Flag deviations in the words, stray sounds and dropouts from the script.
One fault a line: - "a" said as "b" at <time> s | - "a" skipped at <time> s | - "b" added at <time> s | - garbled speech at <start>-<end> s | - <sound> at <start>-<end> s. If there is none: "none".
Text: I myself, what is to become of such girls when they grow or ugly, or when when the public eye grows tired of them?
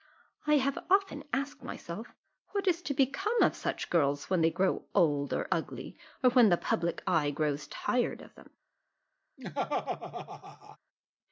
- "have often asked" added at 0.6 s
- "old" added at 4.9 s
- "when" skipped at 6.5 s
- laugh at 9.4-10.8 s